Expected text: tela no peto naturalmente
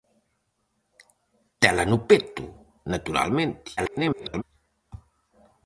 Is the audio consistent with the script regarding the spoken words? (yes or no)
no